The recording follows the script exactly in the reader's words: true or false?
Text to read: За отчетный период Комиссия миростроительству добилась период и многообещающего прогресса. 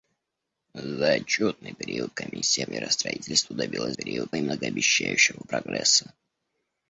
true